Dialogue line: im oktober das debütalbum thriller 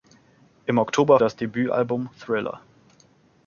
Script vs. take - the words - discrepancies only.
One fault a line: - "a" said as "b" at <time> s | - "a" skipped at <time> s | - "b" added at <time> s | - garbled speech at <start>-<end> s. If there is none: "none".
none